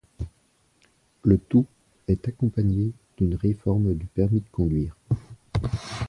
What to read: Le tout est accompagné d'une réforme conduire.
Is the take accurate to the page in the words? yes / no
no